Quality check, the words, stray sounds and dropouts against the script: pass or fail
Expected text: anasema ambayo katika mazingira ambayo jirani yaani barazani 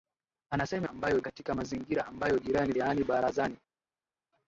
pass